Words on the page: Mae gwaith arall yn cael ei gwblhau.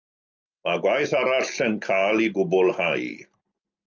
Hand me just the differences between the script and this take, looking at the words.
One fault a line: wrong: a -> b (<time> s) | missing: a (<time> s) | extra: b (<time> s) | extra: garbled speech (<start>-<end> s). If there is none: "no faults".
no faults